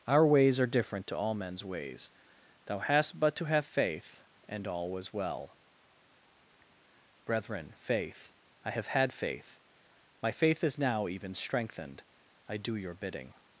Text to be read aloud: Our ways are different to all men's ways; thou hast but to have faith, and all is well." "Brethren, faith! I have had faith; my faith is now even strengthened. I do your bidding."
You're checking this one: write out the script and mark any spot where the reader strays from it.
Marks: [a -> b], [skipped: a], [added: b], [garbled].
Our ways are different to all men's ways; thou hast but to have faith, and all [is -> was] well." "Brethren, faith! I have had faith; my faith is now even strengthened. I do your bidding."